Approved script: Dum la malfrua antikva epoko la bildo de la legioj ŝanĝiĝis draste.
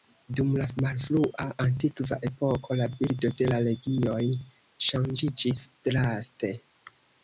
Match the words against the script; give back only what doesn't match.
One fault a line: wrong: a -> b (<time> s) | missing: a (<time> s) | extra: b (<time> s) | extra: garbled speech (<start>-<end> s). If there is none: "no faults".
no faults